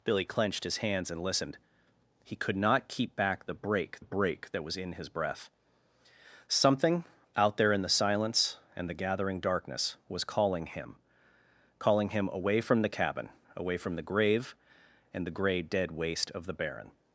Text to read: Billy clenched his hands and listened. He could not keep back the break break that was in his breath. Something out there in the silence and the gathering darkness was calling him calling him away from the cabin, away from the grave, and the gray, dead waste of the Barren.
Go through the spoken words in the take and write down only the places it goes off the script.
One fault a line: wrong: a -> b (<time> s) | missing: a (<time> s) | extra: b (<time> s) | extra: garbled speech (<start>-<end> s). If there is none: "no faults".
no faults